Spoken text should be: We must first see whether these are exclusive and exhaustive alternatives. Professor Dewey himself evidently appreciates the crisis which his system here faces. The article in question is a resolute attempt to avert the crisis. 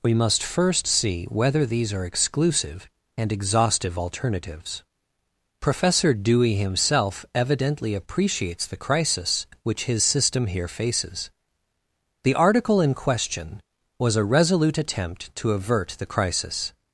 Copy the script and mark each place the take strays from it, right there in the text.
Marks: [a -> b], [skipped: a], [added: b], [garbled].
We must first see whether these are exclusive and exhaustive alternatives. Professor Dewey himself evidently appreciates the crisis which his system here faces. The article in question [is -> was] a resolute attempt to avert the crisis.